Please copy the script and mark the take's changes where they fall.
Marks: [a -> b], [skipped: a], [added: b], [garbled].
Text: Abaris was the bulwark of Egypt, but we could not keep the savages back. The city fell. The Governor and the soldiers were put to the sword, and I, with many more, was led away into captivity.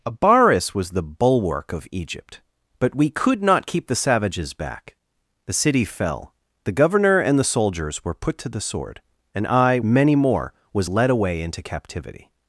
Abaris was the bulwark of Egypt, but we could not keep the savages back. The city fell. The Governor and the soldiers were put to the sword, and I, [skipped: with] many more, was led away into captivity.